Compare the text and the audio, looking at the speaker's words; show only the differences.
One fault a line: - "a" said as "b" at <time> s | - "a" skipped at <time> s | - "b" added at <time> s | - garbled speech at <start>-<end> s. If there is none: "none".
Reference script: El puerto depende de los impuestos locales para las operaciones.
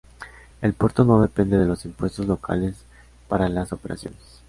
- "no" added at 1.0 s